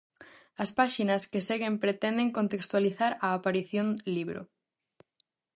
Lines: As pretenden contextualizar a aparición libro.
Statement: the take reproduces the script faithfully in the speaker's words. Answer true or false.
false